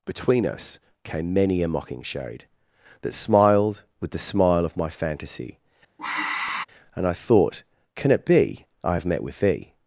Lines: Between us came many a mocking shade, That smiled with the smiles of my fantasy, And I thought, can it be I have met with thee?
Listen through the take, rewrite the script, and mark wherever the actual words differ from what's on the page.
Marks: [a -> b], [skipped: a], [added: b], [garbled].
Between us came many a mocking shade, That smiled with the [smiles -> smile] of my fantasy, And I thought, can it be I have met with thee?